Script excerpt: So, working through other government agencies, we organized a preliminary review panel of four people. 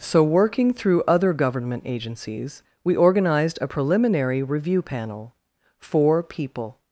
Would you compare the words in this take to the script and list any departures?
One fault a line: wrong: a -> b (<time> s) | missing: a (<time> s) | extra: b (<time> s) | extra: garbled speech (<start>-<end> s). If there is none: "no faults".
missing: of (5.4 s)